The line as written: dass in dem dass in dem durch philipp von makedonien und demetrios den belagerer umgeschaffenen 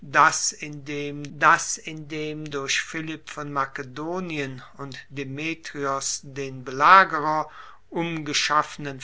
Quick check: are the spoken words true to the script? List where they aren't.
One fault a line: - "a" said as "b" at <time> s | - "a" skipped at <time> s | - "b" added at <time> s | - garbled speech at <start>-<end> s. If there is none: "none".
none